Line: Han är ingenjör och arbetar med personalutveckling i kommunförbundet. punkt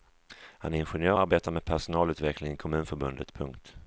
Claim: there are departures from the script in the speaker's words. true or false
true